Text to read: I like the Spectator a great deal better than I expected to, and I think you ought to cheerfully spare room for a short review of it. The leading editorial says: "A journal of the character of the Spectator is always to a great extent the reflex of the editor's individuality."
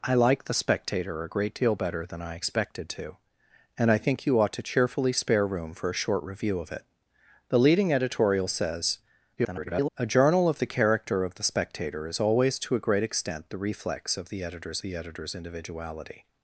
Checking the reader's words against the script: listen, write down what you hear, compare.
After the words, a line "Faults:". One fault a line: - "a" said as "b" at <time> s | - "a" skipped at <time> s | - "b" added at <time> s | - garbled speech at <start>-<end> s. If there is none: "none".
I like the Spectator a great deal better than I expected to, and I think you ought to cheerfully spare room for a short review of it. The leading editorial says: [garbled] "A journal of the character of the Spectator is always to a great extent the reflex of the editor's the editor's individuality."
Faults:
- garbled speech at 9.4-9.9 s
- "the editor's" added at 14.8 s